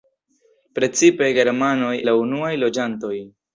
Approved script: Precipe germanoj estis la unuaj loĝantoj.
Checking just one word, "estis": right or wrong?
wrong